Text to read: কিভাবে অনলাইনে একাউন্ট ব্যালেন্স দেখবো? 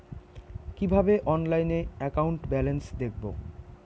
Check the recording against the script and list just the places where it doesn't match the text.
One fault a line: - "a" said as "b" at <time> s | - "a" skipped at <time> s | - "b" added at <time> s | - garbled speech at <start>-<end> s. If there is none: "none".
none